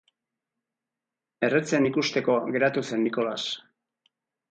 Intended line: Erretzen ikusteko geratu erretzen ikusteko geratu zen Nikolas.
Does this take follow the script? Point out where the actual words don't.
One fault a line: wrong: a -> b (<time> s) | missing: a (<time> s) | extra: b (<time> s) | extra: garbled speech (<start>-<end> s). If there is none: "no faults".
missing: erretzen ikusteko geratu (2.8 s)